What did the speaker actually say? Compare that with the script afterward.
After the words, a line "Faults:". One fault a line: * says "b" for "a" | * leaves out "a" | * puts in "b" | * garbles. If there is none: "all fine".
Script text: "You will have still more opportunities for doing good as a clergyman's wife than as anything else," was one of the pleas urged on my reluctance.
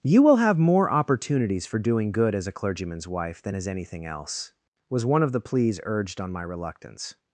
"You will have more opportunities for doing good as a clergyman's wife than as anything else," was one of the pleas urged on my reluctance.
Faults:
* leaves out "still"